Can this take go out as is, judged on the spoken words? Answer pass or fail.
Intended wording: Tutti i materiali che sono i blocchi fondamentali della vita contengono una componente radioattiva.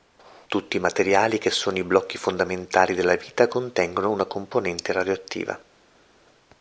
pass